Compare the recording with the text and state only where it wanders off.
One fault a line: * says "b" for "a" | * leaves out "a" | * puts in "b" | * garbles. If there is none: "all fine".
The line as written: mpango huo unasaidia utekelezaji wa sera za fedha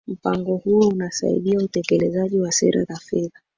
all fine